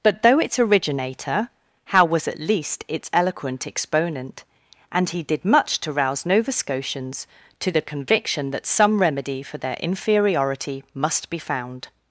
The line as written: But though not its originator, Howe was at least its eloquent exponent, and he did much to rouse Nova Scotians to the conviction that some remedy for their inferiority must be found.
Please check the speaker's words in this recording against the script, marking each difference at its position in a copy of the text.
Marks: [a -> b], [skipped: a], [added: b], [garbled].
But though [skipped: not] its originator, Howe was at least its eloquent exponent, and he did much to rouse Nova Scotians to the conviction that some remedy for their inferiority must be found.